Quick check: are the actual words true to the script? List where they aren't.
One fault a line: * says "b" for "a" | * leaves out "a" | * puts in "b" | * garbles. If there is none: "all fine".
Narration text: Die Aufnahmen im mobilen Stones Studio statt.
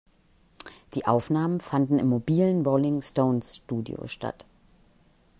* puts in "fanden"
* puts in "Rolling"